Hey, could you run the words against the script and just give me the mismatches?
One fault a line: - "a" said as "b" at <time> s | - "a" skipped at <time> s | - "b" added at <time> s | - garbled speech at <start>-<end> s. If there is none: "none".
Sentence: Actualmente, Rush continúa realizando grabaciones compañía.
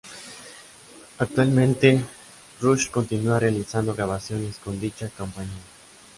- "con dicha" added at 4.6 s